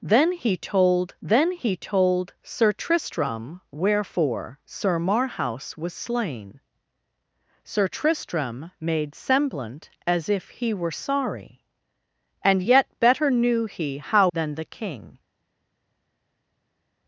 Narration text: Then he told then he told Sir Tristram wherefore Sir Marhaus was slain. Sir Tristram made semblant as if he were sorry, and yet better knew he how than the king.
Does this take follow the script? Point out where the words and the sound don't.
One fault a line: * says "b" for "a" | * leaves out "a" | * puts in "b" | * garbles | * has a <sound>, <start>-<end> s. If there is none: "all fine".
all fine